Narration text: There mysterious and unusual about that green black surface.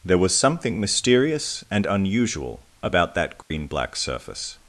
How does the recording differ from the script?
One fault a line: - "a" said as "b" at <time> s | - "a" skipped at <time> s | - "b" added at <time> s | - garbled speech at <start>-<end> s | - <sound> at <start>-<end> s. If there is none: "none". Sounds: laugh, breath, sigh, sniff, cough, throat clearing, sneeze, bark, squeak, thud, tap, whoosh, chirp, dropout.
- "was something" added at 0.2 s
- dropout at 3.4-3.5 s